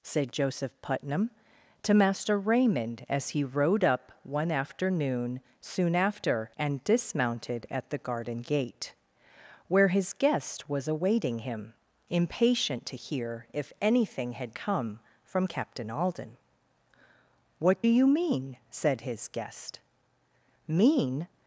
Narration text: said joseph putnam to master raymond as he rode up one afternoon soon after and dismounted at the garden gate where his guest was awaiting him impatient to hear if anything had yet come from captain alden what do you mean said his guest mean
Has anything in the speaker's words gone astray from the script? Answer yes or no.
yes